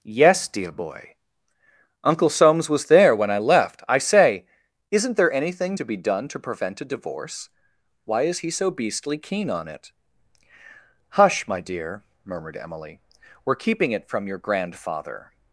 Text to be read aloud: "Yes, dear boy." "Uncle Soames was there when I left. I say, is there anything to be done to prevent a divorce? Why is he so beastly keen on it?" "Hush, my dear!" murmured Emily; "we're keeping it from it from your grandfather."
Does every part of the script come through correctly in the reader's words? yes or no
no